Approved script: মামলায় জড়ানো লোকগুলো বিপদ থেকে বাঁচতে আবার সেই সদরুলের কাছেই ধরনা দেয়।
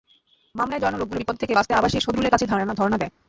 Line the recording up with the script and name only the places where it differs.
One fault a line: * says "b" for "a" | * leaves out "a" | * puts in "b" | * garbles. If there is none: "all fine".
all fine